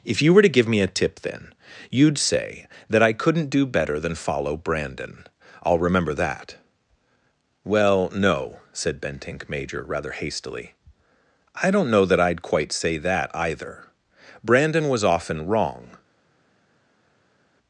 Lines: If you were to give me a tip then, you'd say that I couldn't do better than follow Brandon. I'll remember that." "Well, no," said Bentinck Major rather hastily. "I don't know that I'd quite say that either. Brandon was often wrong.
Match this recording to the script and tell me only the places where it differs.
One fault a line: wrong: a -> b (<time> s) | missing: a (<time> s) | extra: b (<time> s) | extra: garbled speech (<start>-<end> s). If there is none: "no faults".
no faults